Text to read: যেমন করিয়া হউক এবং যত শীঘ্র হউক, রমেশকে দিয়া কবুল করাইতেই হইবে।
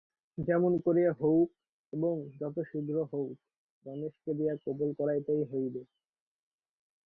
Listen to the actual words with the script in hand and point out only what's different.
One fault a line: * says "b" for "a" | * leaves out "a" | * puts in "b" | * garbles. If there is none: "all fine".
all fine